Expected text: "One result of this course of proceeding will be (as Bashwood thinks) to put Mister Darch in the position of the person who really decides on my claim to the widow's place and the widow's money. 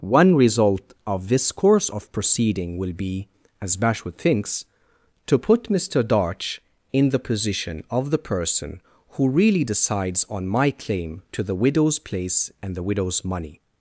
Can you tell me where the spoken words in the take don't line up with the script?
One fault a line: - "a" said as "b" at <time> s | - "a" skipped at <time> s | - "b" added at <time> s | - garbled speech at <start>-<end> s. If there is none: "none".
none